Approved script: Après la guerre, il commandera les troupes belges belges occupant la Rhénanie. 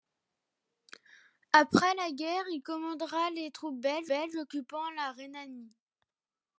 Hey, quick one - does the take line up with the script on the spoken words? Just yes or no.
yes